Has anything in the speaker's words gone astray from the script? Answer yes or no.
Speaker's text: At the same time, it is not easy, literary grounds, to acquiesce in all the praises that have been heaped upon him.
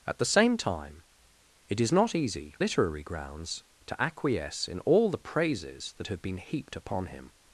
no